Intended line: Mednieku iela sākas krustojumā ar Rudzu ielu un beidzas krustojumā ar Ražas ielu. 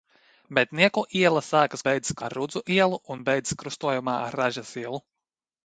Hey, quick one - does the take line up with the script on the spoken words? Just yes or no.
no